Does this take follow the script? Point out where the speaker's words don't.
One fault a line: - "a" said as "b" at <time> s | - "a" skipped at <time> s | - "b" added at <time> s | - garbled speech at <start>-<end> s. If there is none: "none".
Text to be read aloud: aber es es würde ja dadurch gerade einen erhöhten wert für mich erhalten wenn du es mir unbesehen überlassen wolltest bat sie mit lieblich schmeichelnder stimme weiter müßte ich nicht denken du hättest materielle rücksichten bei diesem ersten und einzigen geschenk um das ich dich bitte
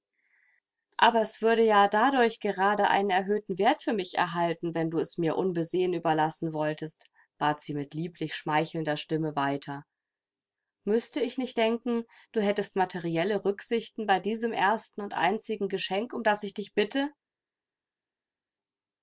- "es" skipped at 1.4 s